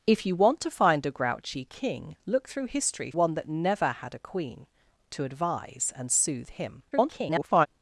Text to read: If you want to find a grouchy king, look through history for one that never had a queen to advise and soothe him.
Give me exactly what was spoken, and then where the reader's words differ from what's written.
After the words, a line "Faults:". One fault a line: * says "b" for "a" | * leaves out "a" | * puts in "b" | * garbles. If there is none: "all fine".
If you want to find a grouchy king, look through history one that never had a queen to advise and soothe him. [garbled]
Faults:
* leaves out "for"
* garbles